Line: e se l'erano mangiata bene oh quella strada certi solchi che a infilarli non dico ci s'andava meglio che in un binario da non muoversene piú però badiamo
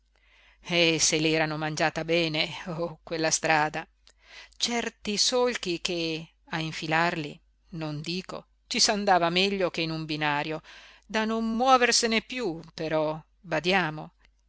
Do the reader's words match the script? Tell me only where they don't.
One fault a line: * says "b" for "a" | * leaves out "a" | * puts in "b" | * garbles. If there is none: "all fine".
all fine